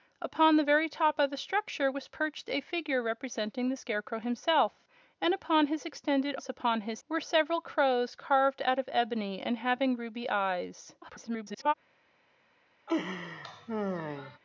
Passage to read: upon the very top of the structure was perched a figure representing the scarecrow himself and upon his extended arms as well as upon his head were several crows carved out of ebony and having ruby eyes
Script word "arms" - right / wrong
wrong